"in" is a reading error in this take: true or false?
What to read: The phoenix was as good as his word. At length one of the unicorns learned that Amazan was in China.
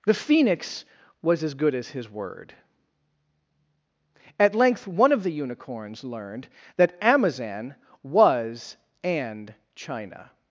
true